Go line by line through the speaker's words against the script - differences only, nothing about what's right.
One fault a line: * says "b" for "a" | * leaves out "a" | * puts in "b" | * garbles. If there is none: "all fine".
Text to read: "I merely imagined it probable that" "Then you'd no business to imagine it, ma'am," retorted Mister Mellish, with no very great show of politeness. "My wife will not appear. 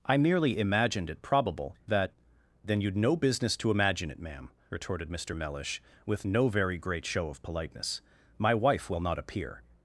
all fine